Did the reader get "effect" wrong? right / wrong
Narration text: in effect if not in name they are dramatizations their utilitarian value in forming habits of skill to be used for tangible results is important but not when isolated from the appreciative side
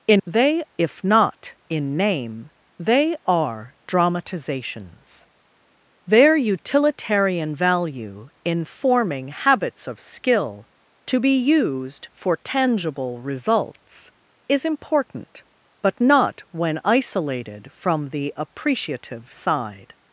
wrong